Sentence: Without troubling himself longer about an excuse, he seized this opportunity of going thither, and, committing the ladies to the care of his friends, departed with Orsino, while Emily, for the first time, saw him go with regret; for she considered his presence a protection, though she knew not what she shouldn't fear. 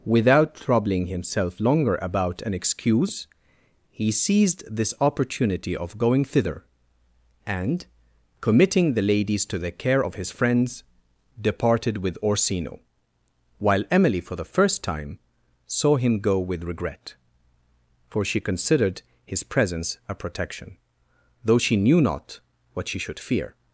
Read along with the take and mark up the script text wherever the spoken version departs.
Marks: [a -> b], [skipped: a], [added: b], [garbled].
Without troubling himself longer about an excuse, he seized this opportunity of going thither, and, committing the ladies to the care of his friends, departed with Orsino, while Emily, for the first time, saw him go with regret; for she considered his presence a protection, though she knew not what she [shouldn't -> should] fear.